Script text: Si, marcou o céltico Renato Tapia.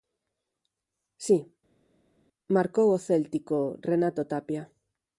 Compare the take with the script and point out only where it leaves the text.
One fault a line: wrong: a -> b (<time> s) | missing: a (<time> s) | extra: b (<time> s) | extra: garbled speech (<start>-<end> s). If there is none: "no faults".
no faults